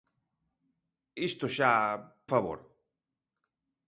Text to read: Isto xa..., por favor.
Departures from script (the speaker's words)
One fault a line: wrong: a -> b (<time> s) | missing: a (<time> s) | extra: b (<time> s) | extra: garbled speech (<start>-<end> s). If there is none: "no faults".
missing: por (1.7 s)